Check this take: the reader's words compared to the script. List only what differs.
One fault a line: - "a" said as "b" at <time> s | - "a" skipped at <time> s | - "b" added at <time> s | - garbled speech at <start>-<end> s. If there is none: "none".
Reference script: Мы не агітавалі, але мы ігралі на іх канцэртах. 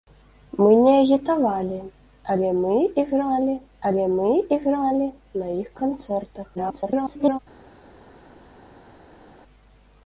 - "але мы ігралі" added at 3.9 s
- garbled speech at 6.5-7.4 s